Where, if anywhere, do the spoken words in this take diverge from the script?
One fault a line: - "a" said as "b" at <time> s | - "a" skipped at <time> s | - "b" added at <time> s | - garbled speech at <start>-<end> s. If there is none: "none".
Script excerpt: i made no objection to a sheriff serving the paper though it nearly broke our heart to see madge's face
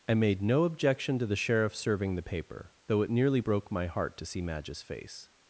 - "a" said as "the" at 1.2 s
- "our" said as "my" at 3.7 s